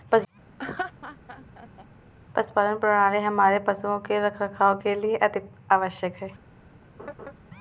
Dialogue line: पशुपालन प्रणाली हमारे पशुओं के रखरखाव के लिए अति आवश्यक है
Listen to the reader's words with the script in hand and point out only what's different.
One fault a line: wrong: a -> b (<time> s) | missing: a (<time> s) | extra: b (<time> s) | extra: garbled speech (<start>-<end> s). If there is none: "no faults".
no faults